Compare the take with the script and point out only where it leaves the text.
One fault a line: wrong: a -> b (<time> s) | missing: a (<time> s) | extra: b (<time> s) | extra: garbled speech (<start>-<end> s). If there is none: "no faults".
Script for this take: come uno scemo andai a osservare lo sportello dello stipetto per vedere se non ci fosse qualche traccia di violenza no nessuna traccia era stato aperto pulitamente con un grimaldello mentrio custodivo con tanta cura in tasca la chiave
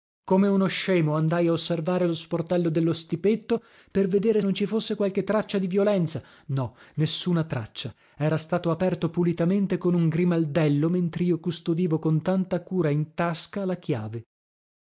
missing: se (4.4 s)